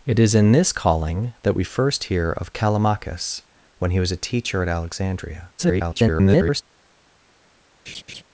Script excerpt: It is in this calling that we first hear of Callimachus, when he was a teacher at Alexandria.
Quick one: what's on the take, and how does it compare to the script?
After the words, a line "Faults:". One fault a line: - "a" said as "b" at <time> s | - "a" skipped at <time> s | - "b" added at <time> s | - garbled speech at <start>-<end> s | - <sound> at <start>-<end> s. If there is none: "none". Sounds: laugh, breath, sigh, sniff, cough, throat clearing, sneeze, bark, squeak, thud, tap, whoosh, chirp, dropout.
It is in this calling that we first hear of Callimachus, when he was a teacher at Alexandria. [garbled]
Faults:
- garbled speech at 5.6-6.6 s
- laugh at 7.9-8.2 s